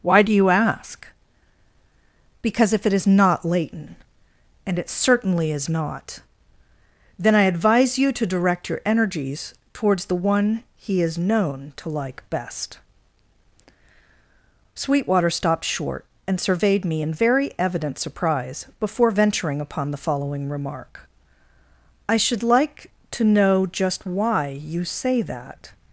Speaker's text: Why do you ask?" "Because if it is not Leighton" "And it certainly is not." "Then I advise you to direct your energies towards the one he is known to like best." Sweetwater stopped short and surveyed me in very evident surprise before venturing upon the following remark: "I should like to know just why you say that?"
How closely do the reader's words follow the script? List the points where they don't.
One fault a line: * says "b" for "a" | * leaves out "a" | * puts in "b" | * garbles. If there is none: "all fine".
all fine